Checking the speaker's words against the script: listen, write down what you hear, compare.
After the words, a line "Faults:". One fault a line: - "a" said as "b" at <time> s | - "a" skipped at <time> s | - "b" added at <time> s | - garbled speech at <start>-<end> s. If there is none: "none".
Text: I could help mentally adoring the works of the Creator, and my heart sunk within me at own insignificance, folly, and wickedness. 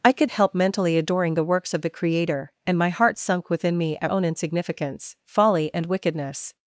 I could help mentally adoring the works of the Creator, and my heart sunk within me at own insignificance, folly, and wickedness.
Faults:
none